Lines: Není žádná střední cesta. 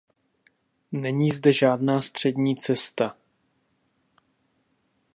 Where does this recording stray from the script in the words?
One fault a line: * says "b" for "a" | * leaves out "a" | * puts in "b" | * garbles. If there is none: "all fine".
* puts in "zde"